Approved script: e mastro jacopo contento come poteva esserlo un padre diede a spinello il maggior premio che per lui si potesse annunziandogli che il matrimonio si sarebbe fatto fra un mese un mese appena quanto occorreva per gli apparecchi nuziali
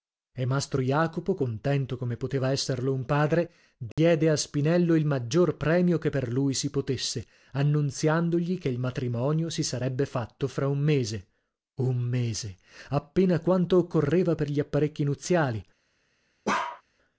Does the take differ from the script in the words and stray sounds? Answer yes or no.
yes